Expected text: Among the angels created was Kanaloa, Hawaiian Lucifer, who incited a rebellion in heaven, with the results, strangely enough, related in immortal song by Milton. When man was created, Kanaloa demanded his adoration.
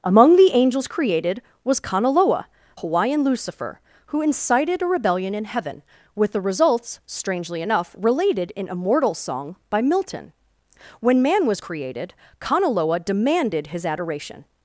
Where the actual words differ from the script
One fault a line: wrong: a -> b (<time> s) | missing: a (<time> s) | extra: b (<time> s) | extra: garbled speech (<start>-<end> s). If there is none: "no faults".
no faults